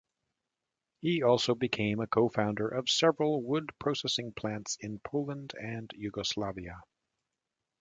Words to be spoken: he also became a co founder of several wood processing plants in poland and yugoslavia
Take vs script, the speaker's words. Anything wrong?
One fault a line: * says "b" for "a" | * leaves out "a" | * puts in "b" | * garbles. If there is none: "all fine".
all fine